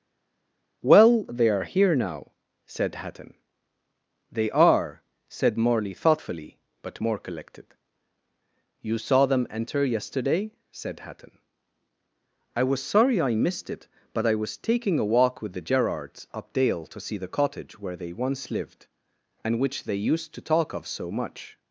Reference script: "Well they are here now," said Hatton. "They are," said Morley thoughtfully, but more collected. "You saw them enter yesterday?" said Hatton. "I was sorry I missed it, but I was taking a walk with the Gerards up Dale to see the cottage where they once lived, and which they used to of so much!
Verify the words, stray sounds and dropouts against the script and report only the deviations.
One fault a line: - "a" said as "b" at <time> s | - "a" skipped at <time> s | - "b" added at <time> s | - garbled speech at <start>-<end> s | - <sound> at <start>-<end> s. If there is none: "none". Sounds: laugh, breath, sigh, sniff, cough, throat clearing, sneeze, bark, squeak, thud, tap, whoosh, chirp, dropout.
- "talk" added at 20.4 s